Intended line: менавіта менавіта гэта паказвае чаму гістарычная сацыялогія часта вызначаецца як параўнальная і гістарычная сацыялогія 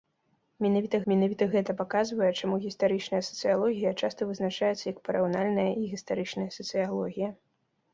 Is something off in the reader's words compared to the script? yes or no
no